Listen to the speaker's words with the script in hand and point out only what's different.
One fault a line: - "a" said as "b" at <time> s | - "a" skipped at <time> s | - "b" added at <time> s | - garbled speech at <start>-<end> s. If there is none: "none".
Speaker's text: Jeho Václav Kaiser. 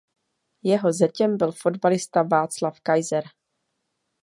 - "zetěm byl fotbalista" added at 0.9 s